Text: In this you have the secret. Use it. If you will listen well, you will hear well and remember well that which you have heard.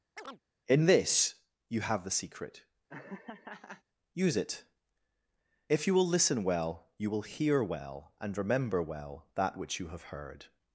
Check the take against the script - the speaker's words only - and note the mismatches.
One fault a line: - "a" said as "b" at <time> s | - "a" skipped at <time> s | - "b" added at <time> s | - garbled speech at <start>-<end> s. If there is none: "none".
none